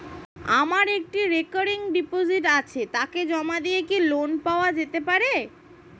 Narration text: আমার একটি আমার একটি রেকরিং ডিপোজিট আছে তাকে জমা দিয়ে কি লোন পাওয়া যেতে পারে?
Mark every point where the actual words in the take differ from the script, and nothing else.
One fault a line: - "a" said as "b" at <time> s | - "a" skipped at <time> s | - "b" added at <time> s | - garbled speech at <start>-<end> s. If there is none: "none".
- "আমার একটি" skipped at 1.2 s